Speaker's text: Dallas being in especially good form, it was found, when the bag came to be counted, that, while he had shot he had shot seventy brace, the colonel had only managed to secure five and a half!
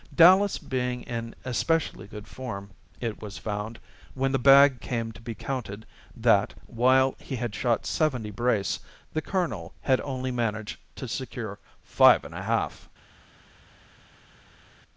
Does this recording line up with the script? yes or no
no